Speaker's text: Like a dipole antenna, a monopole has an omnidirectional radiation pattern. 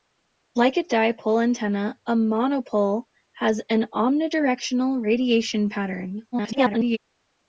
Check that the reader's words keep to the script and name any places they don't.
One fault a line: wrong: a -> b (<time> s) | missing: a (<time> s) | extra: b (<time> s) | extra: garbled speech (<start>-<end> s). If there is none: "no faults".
extra: garbled speech (6.3-7.0 s)